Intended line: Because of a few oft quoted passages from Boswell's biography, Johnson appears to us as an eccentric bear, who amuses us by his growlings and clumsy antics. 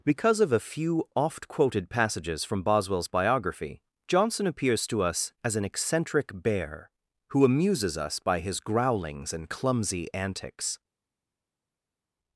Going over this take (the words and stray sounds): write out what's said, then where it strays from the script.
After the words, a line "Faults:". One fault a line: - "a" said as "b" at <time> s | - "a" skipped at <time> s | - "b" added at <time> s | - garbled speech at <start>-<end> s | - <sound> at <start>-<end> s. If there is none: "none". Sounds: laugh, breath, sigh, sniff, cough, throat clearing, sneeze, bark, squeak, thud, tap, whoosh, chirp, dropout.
Because of a few oft quoted passages from Boswell's biography, Johnson appears to us as an eccentric bear, who amuses us by his growlings and clumsy antics.
Faults:
none